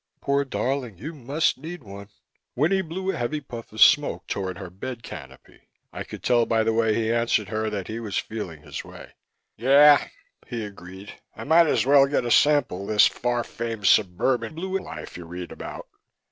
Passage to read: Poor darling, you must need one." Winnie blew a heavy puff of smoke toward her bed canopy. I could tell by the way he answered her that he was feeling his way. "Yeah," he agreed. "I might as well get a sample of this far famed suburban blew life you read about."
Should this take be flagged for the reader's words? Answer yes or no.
no